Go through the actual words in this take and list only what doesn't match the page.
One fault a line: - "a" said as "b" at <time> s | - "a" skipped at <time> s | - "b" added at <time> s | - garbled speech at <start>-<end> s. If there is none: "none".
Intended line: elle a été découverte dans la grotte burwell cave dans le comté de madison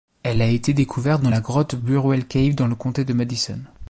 none